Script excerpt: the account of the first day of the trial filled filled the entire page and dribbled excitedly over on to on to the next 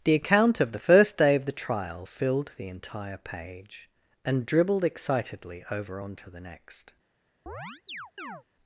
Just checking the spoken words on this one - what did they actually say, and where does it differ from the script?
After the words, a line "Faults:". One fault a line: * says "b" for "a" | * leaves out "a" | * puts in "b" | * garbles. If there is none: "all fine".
the account of the first day of the trial filled the entire page and dribbled excitedly over on to the next
Faults:
* leaves out "filled"
* leaves out "on to"